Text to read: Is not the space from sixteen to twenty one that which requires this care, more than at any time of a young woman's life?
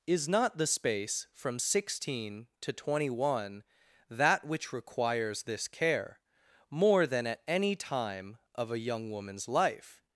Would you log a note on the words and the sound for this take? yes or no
no